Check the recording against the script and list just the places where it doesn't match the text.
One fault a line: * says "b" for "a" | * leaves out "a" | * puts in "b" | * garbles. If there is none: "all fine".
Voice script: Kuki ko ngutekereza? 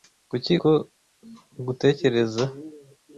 all fine